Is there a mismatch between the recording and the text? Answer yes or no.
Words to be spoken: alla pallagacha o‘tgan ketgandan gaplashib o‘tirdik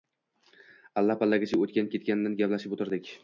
no